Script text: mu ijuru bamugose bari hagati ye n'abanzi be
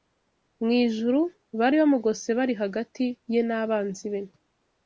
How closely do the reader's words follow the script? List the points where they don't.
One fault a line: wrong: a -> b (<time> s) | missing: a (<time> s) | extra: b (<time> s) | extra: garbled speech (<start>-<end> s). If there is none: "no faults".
extra: bari (1.6 s)